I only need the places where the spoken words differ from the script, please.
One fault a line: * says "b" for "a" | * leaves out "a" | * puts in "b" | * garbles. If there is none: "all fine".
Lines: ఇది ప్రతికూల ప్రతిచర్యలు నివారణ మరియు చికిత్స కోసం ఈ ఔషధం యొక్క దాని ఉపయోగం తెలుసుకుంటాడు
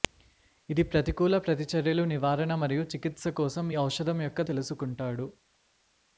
* leaves out "ఈ"
* leaves out "దాని ఉపయోగం"